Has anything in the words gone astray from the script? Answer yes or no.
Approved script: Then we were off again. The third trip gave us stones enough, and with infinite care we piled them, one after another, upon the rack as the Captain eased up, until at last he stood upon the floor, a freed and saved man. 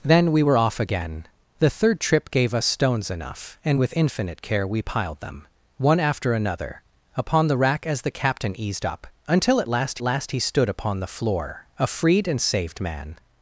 yes